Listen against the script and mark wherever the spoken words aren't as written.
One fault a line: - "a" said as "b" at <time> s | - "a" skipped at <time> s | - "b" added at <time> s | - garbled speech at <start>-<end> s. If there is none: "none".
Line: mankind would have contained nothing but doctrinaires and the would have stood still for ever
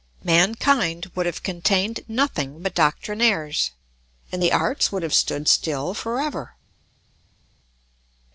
- "arts" added at 4.5 s